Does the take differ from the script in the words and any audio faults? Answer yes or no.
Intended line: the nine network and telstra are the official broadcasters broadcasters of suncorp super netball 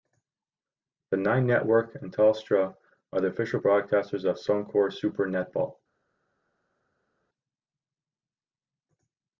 yes